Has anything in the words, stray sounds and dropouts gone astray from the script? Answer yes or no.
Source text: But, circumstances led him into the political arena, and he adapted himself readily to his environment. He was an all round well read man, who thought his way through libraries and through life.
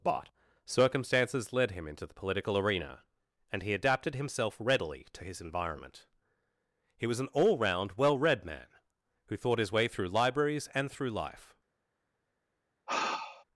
yes